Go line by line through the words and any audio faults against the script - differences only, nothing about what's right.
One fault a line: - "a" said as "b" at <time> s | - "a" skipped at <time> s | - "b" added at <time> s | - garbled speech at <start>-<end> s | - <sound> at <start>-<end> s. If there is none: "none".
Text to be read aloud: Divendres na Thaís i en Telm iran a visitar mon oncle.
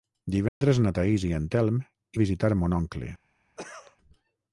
- dropout at 0.5-0.6 s
- "iran" skipped at 1.8 s
- cough at 3.6-4.0 s